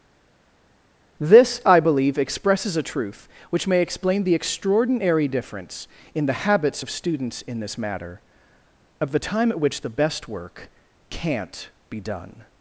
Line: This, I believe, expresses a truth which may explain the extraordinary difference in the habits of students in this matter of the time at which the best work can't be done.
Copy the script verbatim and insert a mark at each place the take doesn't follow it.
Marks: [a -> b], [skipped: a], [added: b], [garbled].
This, I believe, expresses a truth which may explain the extraordinary difference in the habits of students in this matter of the time at which the best work can't be done.